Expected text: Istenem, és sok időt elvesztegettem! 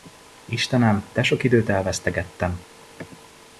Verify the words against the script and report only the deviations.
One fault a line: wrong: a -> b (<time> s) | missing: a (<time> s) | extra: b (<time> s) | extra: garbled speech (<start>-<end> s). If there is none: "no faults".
wrong: és -> de (1.1 s)